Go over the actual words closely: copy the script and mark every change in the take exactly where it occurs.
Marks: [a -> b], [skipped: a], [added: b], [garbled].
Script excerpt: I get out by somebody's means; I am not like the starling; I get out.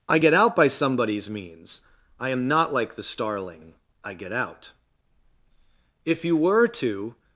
I get out by somebody's means; I am not like the starling; I get out. [added: If you were to]